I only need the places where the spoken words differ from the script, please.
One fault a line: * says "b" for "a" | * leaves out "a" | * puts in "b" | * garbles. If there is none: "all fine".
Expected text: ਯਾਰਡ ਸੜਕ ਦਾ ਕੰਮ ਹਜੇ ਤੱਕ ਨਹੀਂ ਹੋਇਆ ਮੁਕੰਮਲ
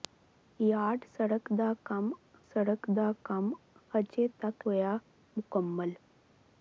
* puts in "ਸੜਕ ਦਾ ਕੰਮ"
* leaves out "ਨਹੀਂ"